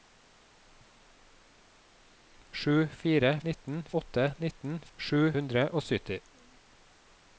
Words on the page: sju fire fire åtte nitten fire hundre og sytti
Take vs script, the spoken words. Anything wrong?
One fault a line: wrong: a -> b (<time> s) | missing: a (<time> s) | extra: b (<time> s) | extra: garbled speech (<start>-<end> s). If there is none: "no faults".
wrong: fire -> nitten (3.5 s)
wrong: fire -> sju (5.0 s)